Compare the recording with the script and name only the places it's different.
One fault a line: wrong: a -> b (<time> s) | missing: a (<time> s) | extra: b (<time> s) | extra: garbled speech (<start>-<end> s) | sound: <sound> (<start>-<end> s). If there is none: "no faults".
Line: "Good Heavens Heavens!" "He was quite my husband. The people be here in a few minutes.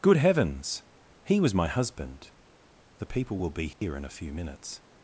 missing: Heavens (0.8 s)
missing: quite (1.5 s)
extra: will (3.4 s)
sound: dropout (3.7-3.8 s)